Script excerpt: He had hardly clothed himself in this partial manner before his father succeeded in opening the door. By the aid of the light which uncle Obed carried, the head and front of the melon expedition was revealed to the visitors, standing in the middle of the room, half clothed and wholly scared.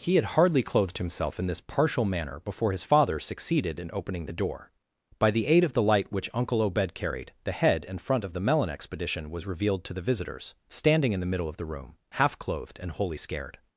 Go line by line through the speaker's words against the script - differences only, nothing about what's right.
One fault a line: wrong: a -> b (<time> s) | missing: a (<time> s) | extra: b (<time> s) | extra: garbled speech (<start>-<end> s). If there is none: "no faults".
no faults